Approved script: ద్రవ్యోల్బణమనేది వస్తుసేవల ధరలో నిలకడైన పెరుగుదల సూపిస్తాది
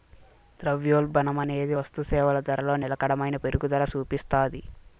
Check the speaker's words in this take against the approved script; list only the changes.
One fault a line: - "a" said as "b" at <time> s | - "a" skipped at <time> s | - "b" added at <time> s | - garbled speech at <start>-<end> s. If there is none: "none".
none